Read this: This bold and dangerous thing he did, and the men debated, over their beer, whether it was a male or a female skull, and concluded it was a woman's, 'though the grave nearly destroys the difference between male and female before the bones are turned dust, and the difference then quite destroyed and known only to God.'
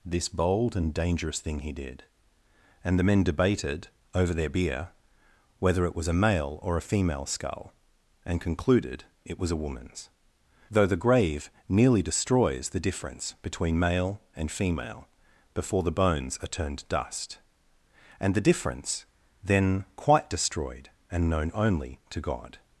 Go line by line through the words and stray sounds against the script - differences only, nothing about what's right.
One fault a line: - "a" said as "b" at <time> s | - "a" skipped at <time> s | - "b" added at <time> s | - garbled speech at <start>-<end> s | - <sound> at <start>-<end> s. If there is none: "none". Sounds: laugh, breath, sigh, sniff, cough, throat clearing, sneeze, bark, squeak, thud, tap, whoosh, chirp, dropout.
none